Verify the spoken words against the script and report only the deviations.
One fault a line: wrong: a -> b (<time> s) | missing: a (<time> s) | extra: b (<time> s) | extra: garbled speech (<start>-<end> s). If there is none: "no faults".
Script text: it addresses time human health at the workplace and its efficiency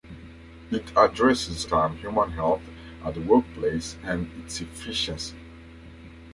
no faults